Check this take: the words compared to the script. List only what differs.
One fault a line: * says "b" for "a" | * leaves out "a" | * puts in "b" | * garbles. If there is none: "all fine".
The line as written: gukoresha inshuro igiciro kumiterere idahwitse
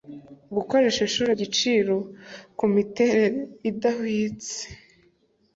all fine